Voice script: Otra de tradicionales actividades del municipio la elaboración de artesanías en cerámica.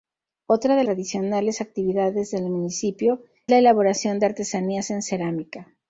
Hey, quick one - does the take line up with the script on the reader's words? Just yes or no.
yes